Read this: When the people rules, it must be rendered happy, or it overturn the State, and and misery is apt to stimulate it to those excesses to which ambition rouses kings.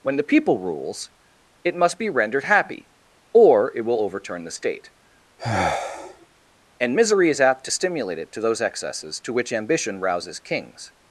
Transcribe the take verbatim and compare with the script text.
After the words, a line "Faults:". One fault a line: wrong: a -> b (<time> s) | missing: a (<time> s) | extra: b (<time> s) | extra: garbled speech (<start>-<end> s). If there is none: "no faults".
When the people rules, it must be rendered happy, or it will overturn the State, and misery is apt to stimulate it to those excesses to which ambition rouses kings.
Faults:
extra: will (3.8 s)
missing: and (7.0 s)